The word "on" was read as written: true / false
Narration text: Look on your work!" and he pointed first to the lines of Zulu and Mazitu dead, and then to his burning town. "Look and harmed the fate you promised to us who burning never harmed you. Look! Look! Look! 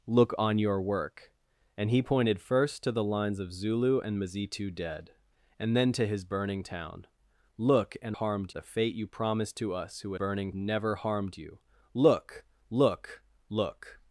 true